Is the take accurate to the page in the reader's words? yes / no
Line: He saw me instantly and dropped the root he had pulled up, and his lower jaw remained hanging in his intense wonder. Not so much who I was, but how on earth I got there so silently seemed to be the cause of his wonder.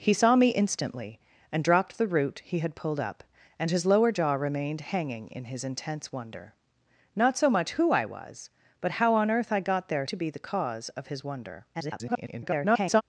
no